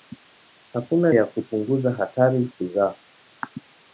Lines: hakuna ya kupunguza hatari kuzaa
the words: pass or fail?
pass